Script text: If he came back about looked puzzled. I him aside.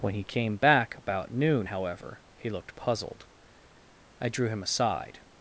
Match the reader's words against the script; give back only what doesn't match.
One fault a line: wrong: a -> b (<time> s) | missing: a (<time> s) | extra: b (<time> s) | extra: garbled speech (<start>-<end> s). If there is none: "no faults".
wrong: If -> When (0.0 s)
extra: noon however he (1.3 s)
extra: drew (4.3 s)